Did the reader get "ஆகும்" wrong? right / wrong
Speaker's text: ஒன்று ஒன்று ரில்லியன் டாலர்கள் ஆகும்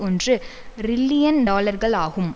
right